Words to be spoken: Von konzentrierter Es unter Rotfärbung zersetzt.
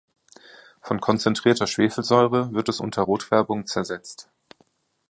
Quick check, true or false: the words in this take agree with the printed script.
false